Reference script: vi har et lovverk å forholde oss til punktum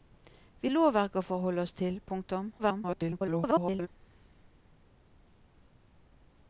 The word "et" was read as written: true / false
false